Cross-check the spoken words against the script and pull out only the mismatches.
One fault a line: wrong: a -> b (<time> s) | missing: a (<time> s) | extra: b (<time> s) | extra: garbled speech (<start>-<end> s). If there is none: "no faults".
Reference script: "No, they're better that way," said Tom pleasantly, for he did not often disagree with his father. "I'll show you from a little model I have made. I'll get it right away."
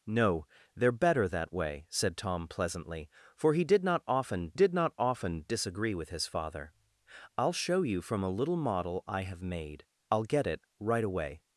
extra: did not often (4.5 s)